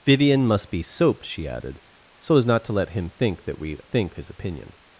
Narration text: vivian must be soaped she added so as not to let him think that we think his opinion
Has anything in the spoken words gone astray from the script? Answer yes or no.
no